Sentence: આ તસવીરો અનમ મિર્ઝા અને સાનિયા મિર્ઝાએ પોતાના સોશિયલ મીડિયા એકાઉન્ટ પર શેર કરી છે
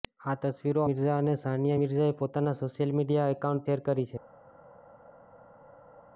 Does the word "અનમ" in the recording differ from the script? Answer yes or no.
yes